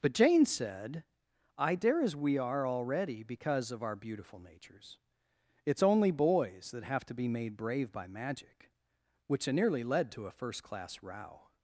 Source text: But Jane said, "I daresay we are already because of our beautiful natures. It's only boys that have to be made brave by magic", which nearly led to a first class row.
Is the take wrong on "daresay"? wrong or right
wrong